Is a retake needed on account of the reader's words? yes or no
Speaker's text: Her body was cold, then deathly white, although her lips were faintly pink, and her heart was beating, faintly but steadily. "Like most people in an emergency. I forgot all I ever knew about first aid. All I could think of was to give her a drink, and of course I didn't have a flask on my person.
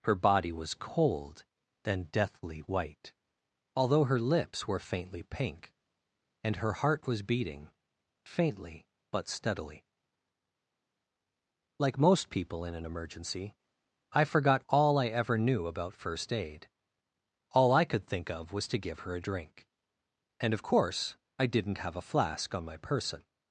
no